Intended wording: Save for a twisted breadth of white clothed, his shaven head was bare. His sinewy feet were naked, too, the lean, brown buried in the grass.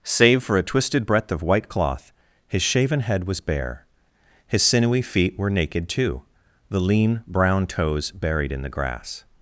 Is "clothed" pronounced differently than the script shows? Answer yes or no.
yes